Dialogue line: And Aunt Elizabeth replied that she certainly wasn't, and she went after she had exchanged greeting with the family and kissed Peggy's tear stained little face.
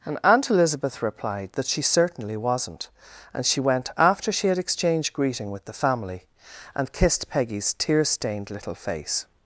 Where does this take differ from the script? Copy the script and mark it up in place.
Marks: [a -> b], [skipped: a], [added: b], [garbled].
And Aunt Elizabeth replied that she certainly wasn't, and she went after she had exchanged greeting with the family and kissed Peggy's tear stained little face.